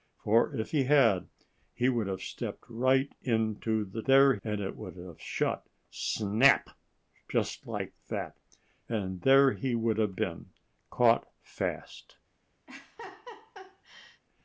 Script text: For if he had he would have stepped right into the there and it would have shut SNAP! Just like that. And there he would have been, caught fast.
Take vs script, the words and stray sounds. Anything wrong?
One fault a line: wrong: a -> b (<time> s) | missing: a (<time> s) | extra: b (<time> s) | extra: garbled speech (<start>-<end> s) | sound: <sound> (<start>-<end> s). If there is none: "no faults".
sound: laugh (12.7-14.2 s)